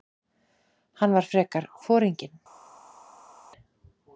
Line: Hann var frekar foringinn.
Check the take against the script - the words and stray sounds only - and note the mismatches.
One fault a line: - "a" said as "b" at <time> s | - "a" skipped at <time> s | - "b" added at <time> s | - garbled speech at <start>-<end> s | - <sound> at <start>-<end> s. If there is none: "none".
none